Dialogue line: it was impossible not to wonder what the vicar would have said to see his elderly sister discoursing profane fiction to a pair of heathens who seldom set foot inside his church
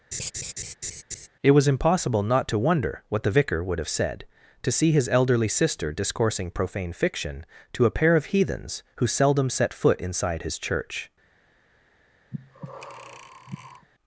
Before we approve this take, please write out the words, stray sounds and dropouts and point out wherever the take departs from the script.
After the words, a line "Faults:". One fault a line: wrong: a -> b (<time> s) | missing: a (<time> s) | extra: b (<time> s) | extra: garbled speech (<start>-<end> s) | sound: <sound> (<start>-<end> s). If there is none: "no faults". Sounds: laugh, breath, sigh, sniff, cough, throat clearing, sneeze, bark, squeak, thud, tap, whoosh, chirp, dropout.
it was impossible not to wonder what the vicar would have said to see his elderly sister discoursing profane fiction to a pair of heathens who seldom set foot inside his church
Faults:
sound: laugh (0.1-1.3 s)
sound: breath (12.3-13.9 s)